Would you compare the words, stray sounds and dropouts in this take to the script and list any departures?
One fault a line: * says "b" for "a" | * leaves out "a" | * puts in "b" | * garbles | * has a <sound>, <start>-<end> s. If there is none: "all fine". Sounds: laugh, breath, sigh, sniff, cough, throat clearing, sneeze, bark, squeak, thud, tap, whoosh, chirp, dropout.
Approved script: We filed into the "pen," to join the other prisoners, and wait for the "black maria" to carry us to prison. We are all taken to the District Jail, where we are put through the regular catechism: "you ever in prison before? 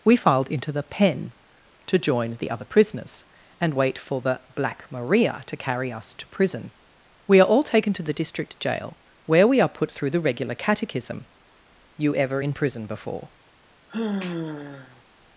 * has a sigh, 13.9-15.0 s